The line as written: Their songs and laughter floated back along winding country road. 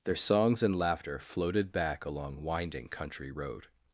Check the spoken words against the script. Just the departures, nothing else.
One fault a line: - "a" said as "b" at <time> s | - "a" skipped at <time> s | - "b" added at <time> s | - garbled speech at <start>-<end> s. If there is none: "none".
none